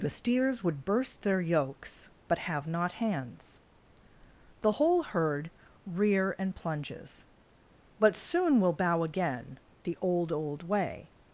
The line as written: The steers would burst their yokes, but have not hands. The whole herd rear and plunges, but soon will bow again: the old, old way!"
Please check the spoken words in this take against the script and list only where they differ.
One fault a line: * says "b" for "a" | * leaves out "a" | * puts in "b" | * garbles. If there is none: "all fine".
all fine